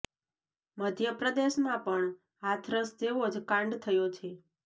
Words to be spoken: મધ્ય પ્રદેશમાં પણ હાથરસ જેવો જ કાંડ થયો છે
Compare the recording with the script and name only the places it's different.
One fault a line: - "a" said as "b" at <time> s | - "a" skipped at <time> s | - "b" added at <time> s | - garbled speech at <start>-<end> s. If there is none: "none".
none